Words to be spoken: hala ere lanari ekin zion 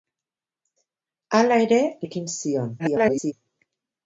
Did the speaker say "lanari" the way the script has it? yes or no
no